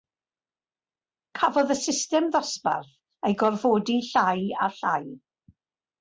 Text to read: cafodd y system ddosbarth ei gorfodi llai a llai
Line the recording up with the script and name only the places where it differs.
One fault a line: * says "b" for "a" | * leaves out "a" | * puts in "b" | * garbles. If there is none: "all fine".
all fine